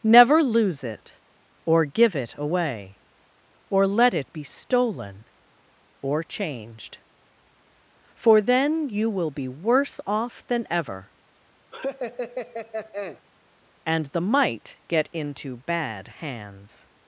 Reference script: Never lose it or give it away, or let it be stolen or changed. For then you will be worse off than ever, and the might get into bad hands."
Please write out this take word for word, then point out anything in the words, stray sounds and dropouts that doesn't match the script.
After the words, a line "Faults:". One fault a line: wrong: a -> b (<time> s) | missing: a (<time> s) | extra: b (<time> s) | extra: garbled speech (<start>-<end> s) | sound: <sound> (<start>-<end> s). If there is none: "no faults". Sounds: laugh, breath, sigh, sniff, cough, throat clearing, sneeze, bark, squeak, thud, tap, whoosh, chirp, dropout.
Never lose it or give it away, or let it be stolen or changed. For then you will be worse off than ever, and the might get into bad hands."
Faults:
sound: laugh (11.7-13.2 s)